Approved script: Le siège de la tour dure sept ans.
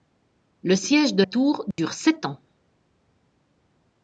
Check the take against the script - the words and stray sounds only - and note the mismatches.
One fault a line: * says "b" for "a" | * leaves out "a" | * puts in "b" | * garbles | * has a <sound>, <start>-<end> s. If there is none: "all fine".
* leaves out "la"
* has a dropout, 1.7-1.8 s